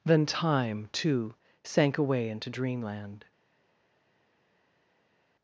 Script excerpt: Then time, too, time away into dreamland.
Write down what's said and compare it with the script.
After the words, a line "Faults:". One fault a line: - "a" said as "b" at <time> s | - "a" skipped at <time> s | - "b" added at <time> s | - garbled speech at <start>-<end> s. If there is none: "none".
Then time, too, sank away into dreamland.
Faults:
- "time" said as "sank" at 1.6 s